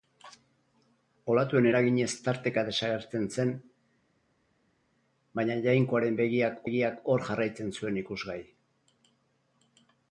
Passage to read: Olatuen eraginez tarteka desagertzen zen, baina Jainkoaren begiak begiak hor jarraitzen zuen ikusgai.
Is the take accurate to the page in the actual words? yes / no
yes